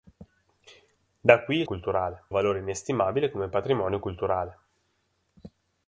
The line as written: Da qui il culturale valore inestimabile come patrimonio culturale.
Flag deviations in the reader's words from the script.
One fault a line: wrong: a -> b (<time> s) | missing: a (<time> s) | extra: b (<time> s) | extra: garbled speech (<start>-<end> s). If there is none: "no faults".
no faults